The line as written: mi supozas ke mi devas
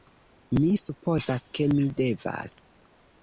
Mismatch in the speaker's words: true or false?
false